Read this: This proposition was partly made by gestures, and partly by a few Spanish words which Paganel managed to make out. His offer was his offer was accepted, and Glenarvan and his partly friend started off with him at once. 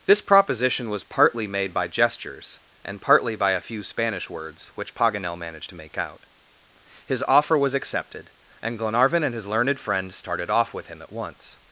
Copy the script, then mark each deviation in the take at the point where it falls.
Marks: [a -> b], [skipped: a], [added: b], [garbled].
This proposition was partly made by gestures, and partly by a few Spanish words which Paganel managed to make out. His offer was [skipped: his offer was] accepted, and Glenarvan and his [partly -> learned] friend started off with him at once.